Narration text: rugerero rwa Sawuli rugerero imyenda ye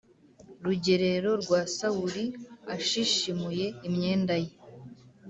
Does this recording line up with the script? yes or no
no